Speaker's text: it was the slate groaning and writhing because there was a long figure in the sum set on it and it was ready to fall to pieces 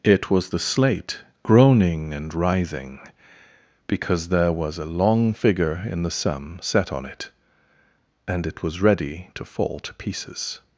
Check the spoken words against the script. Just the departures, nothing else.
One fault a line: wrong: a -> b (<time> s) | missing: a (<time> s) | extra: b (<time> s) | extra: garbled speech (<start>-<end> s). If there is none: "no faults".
no faults